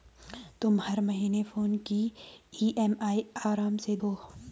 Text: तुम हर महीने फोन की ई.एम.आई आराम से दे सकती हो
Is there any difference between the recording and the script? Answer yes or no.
yes